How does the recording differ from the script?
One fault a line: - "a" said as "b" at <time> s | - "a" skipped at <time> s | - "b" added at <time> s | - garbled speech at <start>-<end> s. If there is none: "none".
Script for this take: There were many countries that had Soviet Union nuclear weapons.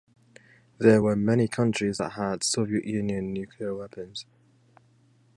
none